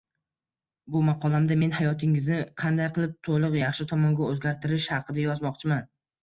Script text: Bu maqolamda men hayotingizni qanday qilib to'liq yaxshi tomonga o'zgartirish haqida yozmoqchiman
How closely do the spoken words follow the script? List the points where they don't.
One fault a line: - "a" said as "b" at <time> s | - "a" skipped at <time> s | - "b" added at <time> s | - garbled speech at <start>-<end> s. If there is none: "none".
none